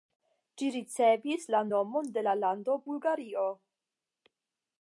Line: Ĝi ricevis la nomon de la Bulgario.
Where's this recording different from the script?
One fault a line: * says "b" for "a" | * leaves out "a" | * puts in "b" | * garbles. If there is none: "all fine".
* puts in "lando"